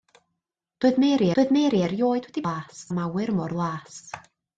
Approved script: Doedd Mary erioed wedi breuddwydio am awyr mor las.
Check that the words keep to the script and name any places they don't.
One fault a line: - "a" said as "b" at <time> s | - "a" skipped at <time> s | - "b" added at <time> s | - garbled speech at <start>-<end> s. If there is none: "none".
- "doedd Mary" added at 1.4 s
- "breuddwydio" said as "las" at 2.5 s